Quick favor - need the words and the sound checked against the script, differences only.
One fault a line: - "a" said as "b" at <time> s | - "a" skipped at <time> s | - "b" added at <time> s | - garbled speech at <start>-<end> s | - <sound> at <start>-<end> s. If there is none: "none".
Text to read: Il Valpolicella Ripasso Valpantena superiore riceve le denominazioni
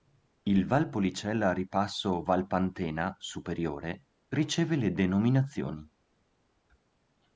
none